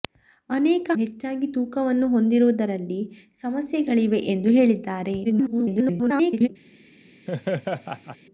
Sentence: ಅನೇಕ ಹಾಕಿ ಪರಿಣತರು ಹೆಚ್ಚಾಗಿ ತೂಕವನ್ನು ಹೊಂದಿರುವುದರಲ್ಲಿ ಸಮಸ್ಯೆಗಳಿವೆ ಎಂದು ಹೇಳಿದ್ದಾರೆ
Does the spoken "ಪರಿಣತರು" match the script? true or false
false